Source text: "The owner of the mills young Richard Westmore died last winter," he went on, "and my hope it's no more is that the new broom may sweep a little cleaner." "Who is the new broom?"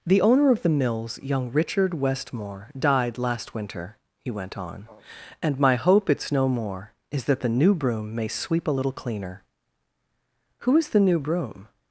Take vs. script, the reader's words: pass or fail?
pass